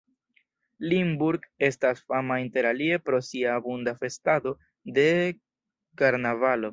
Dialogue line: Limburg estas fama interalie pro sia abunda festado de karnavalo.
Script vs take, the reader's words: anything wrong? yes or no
no